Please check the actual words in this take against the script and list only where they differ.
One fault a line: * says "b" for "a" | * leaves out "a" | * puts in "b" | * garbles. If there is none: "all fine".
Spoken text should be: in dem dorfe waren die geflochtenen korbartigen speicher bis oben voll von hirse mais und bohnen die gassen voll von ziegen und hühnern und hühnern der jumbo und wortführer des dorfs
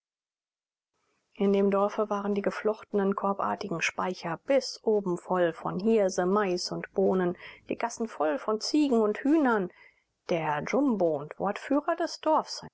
* leaves out "und hühnern"